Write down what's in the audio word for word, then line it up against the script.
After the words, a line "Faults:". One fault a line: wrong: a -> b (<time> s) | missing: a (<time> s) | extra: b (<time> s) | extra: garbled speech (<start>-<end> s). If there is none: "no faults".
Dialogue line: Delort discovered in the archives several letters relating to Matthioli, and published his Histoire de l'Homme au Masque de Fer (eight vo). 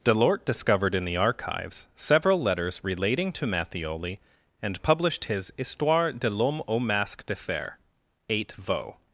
Delort discovered in the archives several letters relating to Matthioli, and published his Histoire de l'Homme au Masque de Fer (eight vo).
Faults:
no faults